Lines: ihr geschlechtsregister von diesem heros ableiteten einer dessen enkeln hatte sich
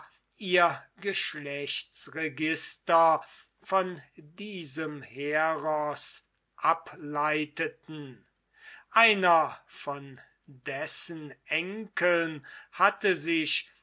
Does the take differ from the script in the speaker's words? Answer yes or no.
yes